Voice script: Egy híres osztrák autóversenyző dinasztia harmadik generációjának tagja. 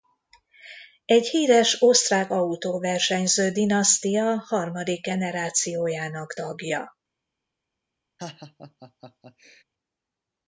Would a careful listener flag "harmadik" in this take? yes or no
no